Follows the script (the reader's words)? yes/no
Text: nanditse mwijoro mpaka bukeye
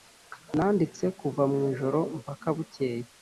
no